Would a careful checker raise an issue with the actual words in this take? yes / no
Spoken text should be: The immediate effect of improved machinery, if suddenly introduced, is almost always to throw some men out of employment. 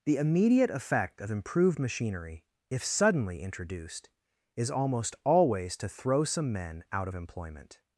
no